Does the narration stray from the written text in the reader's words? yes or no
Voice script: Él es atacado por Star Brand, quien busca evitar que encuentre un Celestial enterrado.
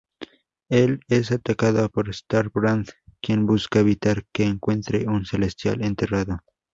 no